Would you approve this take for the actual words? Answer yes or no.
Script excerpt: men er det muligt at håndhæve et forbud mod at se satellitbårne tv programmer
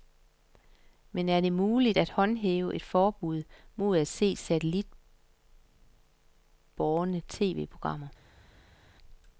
yes